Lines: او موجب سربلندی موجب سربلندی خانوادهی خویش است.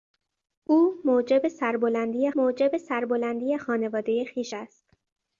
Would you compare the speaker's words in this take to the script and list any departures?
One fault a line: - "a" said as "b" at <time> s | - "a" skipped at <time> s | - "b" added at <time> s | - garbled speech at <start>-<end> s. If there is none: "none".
none